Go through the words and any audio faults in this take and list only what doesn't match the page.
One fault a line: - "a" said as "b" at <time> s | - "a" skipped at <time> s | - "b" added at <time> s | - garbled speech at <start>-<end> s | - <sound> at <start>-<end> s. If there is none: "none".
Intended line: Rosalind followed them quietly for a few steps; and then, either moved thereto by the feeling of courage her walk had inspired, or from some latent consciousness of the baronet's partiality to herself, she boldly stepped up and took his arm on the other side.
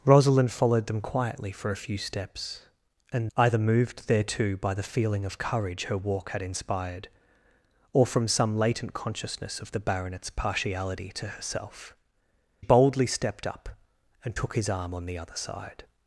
- "then" skipped at 3.3 s
- "she" skipped at 12.0 s